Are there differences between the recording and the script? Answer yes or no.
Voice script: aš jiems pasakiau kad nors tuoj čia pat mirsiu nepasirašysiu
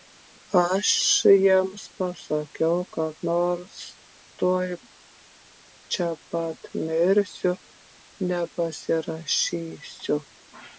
no